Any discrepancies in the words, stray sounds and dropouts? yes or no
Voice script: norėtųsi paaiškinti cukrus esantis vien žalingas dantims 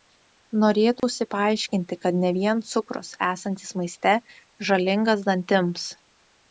yes